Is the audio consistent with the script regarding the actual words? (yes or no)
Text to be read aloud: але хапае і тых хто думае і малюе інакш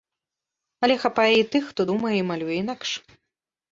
yes